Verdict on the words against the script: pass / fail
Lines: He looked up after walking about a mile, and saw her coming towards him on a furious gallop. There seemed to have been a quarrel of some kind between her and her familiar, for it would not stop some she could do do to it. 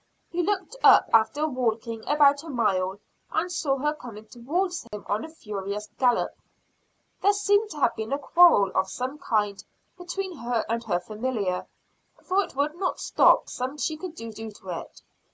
pass